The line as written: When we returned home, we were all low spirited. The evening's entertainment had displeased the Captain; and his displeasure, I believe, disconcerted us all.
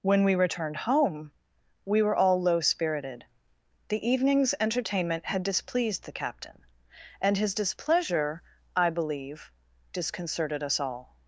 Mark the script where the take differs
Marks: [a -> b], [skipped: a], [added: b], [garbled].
When we returned home, we were all low spirited. The evening's entertainment had displeased the Captain; and his displeasure, I believe, disconcerted us all.